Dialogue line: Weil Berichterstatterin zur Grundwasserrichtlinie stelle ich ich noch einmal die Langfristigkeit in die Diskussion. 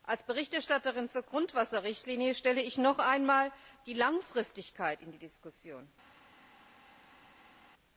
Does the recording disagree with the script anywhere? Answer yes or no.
yes